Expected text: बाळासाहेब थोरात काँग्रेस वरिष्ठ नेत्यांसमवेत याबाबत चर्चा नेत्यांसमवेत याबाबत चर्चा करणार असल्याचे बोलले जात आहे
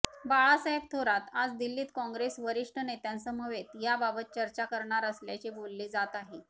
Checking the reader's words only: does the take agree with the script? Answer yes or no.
no